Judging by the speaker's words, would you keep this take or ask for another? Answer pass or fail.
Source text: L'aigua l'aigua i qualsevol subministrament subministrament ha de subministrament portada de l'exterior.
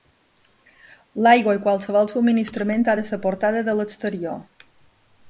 fail